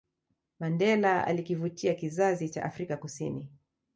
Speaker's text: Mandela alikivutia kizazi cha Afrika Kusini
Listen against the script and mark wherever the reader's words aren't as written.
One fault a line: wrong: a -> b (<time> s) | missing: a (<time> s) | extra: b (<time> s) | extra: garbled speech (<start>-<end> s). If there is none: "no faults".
no faults